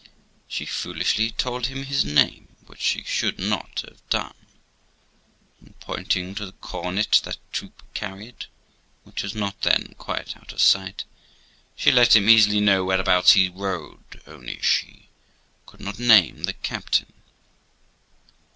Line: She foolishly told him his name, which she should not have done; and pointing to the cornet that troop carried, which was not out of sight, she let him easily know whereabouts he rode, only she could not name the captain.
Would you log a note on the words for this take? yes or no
yes